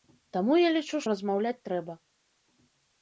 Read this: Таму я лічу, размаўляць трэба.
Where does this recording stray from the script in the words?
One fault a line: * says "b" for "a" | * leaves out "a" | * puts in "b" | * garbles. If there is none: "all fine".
all fine